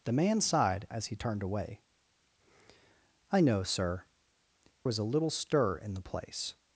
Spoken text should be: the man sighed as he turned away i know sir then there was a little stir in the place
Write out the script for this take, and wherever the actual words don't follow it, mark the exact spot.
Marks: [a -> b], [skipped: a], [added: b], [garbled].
the man sighed as he turned away i know sir [skipped: then there] was a little stir in the place